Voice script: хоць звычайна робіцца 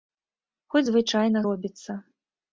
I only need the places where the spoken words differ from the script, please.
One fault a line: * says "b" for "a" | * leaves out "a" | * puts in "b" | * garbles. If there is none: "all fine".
all fine